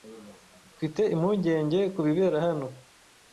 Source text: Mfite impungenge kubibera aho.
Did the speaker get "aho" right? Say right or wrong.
wrong